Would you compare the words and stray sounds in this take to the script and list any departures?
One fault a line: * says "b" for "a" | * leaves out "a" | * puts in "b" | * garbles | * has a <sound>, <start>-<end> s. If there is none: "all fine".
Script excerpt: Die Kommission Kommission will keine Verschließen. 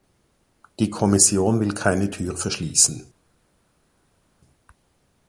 * leaves out "Kommission"
* puts in "Tür"